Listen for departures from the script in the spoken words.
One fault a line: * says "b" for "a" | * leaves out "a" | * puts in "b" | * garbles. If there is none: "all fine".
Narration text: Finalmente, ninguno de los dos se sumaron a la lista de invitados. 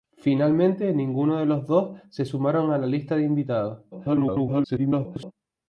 * garbles